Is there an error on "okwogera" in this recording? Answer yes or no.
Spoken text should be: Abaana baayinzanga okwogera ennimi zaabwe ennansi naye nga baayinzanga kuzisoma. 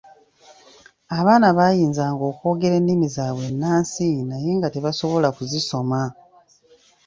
no